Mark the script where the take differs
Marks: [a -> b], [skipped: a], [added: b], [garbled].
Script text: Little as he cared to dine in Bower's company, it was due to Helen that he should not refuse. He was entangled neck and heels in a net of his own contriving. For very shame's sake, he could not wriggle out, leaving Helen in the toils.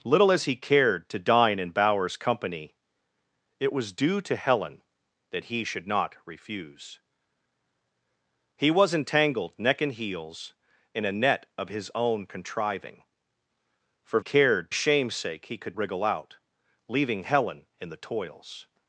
Little as he cared to dine in Bower's company, it was due to Helen that he should not refuse. He was entangled neck and heels in a net of his own contriving. For [very -> cared] shame's sake, he could [skipped: not] wriggle out, leaving Helen in the toils.